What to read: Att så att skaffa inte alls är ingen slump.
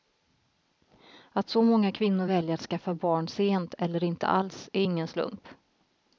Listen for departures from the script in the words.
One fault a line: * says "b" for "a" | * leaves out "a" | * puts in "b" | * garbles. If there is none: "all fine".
* puts in "många kvinnor väljer"
* puts in "barn sent eller"